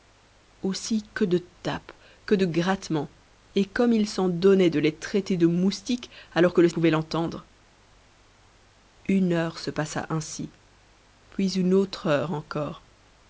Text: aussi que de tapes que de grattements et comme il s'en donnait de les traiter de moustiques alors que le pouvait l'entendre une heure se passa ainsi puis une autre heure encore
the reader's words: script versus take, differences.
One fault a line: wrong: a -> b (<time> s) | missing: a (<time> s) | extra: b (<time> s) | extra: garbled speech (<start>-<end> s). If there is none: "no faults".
no faults